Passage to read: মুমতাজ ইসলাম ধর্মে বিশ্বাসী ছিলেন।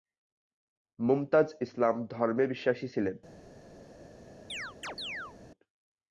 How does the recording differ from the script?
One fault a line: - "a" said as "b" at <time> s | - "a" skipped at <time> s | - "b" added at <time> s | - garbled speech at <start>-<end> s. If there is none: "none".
none